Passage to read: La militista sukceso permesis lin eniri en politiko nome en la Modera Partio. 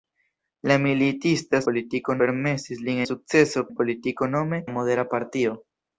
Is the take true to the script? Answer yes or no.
no